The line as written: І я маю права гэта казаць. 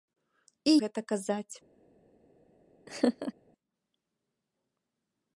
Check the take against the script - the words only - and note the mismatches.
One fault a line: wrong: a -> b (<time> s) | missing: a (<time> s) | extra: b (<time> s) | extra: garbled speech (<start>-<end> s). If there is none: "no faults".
missing: я маю права (0.7 s)